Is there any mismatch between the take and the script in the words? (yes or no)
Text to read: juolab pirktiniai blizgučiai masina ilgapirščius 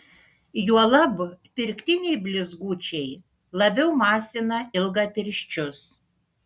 yes